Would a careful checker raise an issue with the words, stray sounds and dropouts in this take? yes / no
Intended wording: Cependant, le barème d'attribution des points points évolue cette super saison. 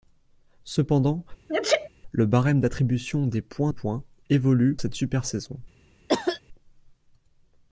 yes